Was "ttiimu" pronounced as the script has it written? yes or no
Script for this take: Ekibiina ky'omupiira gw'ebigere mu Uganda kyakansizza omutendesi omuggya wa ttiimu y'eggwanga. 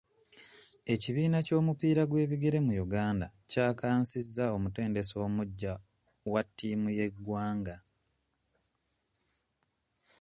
yes